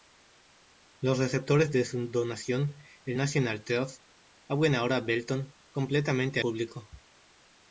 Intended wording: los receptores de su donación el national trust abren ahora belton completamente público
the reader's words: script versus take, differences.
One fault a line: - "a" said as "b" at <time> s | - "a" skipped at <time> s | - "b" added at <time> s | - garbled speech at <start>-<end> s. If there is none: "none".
none